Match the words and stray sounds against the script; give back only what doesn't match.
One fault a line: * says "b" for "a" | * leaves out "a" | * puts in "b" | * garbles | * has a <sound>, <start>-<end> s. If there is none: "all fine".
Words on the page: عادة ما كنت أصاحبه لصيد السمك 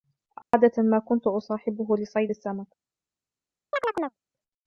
* has a dropout, 0.4-0.5 s
* has a chirp, 3.7-4.2 s